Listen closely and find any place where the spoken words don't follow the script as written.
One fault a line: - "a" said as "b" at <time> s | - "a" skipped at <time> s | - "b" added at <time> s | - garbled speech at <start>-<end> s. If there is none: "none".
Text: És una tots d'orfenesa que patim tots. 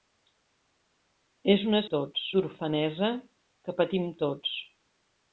none